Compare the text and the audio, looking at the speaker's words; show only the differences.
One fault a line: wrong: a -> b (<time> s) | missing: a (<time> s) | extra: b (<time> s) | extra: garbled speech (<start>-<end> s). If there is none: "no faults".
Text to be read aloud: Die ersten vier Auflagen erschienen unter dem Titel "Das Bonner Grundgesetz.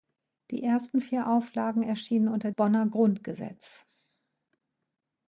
missing: dem Titel Das (2.5 s)